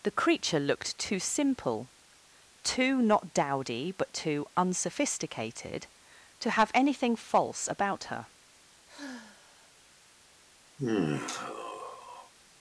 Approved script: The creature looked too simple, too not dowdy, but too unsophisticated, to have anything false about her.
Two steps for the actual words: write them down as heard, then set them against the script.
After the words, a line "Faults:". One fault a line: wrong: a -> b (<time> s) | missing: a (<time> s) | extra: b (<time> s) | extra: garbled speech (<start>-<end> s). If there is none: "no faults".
The creature looked too simple, too not dowdy, but too unsophisticated, to have anything false about her.
Faults:
no faults